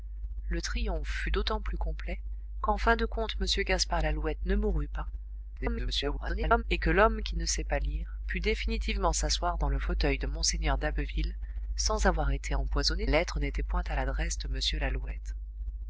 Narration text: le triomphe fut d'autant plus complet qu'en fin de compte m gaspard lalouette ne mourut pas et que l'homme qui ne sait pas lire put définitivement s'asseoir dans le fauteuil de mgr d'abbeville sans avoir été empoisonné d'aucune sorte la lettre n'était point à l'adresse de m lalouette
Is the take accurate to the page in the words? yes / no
no